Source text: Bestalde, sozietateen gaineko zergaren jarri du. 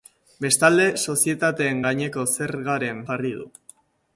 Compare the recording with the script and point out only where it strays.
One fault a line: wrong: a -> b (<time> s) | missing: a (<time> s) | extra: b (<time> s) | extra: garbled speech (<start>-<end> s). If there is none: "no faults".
no faults